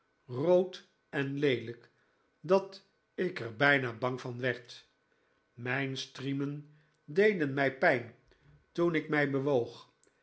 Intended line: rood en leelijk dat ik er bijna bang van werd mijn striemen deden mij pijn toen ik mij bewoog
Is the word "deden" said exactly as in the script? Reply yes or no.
yes